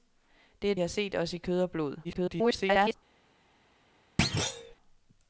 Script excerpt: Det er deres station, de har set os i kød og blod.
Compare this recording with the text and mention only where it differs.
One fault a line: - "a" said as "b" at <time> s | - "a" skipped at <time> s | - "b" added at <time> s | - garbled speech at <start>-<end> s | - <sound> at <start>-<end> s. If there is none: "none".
- "deres station de" skipped at 0.8 s
- garbled speech at 2.0-2.9 s
- thud at 4.2-4.7 s